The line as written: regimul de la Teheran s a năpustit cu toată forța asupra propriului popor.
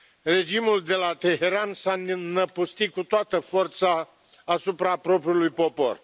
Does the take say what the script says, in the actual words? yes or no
yes